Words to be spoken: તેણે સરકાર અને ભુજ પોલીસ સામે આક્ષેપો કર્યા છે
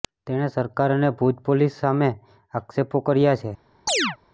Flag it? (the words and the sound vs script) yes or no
yes